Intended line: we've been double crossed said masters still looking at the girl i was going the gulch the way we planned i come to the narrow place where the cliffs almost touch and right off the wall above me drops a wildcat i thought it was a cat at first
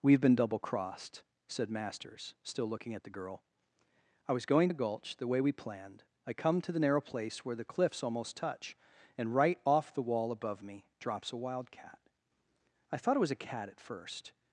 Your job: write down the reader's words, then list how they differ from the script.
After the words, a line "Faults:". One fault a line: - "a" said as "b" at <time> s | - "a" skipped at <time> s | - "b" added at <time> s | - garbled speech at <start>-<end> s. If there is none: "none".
we've been double crossed said masters still looking at the girl i was going the gulch the way we planned i come to the narrow place where the cliffs almost touch and right off the wall above me drops a wildcat i thought it was a cat at first
Faults:
none